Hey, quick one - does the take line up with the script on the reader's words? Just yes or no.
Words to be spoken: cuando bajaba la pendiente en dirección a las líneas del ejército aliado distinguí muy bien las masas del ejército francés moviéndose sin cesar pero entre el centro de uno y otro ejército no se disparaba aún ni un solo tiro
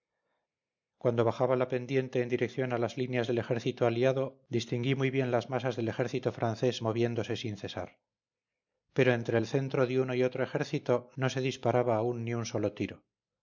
yes